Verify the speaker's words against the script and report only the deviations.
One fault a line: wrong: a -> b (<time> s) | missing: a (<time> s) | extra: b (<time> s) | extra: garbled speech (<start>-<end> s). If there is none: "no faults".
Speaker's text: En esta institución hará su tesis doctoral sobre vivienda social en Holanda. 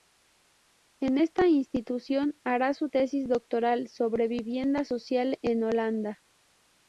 no faults